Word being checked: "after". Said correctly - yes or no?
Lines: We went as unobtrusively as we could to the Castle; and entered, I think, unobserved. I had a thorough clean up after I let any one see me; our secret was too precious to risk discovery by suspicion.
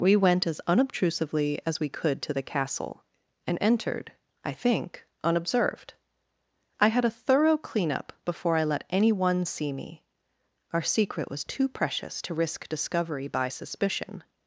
no